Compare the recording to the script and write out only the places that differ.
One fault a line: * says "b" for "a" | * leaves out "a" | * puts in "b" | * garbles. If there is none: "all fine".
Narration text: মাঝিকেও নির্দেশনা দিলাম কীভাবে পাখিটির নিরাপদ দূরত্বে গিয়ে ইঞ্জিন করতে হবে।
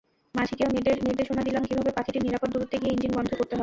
* puts in "বন্ধ"